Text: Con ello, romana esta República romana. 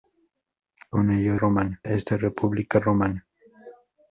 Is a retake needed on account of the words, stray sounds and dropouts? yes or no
no